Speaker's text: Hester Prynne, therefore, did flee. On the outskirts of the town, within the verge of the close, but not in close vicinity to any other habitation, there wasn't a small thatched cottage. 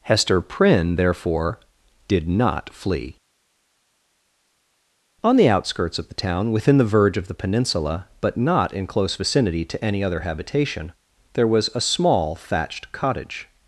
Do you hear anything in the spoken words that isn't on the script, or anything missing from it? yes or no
yes